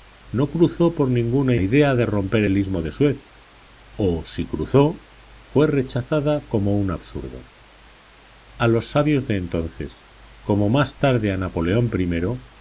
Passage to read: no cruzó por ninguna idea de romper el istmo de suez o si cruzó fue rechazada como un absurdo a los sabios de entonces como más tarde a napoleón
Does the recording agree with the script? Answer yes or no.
yes